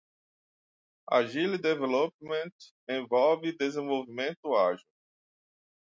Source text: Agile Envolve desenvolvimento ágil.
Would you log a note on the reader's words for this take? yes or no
yes